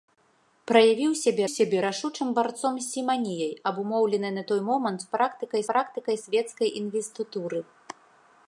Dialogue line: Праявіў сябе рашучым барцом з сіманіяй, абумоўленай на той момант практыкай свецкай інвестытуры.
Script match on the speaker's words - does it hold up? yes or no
no